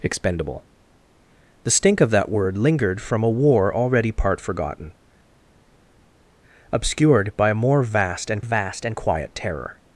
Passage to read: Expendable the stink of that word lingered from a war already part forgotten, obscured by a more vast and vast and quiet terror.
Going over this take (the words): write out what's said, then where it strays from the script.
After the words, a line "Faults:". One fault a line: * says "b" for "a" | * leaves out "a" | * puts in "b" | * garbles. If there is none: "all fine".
Expendable the stink of that word lingered from a war already part forgotten, obscured by a more vast and vast and quiet terror.
Faults:
all fine